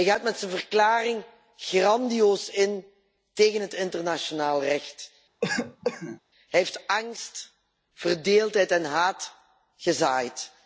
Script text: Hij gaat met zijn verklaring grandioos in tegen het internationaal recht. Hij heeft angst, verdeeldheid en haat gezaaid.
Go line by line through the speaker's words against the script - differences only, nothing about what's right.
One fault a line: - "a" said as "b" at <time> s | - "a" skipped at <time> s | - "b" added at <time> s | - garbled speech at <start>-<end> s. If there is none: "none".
none